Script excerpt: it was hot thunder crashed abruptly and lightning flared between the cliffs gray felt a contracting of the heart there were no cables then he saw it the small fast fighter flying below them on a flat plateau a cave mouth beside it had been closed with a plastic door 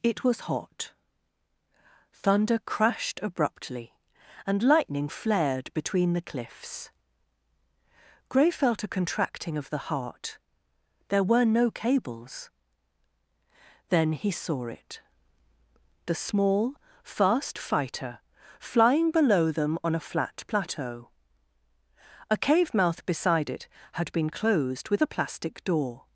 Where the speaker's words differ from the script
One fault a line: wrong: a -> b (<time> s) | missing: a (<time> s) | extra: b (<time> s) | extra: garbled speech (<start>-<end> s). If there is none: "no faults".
no faults